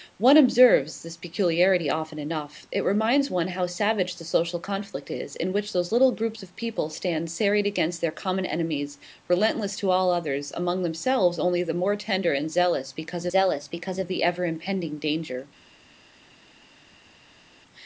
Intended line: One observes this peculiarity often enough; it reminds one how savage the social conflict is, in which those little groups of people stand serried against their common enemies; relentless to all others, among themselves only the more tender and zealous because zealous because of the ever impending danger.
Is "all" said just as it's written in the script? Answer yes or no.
yes